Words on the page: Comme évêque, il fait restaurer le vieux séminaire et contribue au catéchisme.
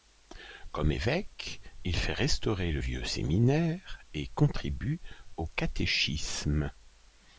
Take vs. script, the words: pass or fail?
pass